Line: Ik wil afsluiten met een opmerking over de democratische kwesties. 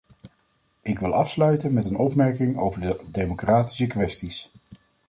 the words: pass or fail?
pass